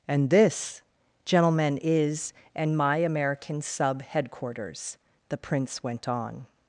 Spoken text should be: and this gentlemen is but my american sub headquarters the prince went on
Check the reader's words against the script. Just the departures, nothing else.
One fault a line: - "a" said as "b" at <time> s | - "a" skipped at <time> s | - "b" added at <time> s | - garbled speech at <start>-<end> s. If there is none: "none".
- "but" said as "and" at 2.6 s